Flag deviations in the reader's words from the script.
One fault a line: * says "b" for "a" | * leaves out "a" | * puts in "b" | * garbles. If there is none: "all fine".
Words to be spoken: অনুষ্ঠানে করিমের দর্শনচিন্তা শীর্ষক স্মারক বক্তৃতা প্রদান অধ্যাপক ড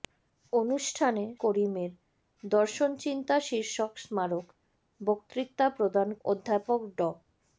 all fine